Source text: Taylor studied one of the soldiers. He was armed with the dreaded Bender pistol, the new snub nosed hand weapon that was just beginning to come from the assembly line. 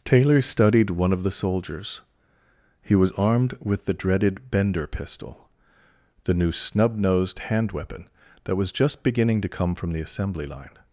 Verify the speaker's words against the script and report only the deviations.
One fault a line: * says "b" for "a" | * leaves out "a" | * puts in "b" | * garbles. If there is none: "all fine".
all fine